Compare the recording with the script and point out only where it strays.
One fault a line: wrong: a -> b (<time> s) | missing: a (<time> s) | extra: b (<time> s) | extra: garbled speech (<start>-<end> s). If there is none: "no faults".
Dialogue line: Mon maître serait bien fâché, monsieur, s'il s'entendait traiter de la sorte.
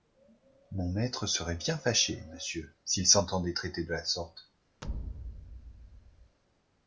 no faults